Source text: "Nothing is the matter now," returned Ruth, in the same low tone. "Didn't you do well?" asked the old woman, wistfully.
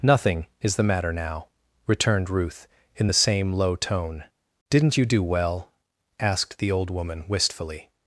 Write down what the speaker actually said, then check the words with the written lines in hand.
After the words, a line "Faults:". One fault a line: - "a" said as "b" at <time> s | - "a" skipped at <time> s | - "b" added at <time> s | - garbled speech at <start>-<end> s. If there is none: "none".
"Nothing is the matter now," returned Ruth, in the same low tone. "Didn't you do well?" asked the old woman, wistfully.
Faults:
none